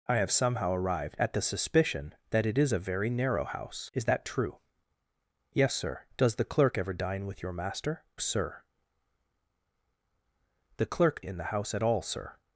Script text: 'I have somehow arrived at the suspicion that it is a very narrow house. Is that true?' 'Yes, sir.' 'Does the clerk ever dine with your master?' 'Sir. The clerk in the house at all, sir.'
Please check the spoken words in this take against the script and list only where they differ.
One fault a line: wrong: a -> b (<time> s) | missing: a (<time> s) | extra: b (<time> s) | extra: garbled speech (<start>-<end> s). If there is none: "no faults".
no faults